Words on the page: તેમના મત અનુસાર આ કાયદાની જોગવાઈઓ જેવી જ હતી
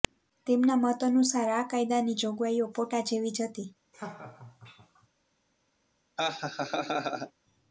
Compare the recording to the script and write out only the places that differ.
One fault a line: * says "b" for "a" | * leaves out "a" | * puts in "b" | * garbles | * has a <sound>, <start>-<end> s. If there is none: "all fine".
* puts in "પોટા"
* has a laugh, 3.9-5.1 s
* has a laugh, 6.2-7.3 s